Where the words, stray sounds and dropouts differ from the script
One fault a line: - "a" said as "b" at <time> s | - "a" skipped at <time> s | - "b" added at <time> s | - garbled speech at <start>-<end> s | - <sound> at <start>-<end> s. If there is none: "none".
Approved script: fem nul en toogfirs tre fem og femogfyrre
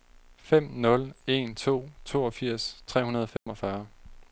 - "to" added at 1.5 s
- "fem" said as "hundrede" at 3.0 s
- dropout at 3.4-3.5 s